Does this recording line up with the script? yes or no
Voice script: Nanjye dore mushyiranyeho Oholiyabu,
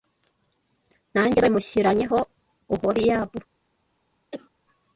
yes